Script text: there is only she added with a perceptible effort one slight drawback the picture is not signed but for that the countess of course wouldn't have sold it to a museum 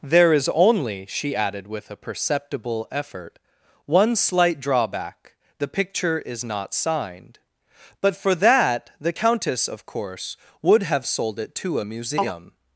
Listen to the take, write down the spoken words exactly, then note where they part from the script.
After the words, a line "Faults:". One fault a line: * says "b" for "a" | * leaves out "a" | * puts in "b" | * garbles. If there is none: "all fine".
there is only she added with a perceptible effort one slight drawback the picture is not signed but for that the countess of course would have sold it to a museum
Faults:
* says "would" for "wouldn't"